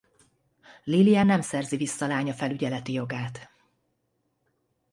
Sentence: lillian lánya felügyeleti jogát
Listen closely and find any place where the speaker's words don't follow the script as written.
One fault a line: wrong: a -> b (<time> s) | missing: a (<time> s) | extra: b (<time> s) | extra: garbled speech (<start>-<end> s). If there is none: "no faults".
extra: nem szerzi vissza (1.2 s)